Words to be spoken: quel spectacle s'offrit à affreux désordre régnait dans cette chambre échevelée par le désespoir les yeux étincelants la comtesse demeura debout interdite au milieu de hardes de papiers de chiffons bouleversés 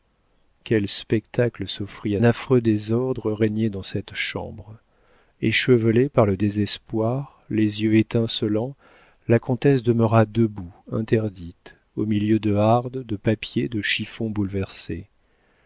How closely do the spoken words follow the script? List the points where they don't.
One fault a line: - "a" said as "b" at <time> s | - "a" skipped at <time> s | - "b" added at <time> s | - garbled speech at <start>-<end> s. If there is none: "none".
none